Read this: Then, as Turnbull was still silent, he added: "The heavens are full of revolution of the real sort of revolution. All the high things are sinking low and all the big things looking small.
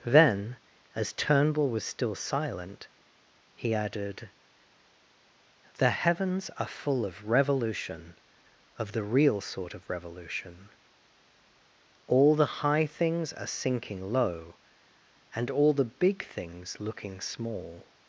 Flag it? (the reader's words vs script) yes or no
no